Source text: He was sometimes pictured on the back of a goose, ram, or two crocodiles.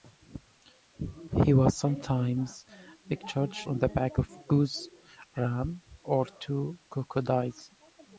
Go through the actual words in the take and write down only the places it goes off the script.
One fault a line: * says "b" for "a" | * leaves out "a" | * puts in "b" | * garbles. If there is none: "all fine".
all fine